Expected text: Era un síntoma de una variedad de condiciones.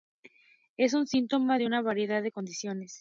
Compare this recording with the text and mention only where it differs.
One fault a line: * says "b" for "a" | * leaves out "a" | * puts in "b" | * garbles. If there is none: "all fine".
* says "Es" for "Era"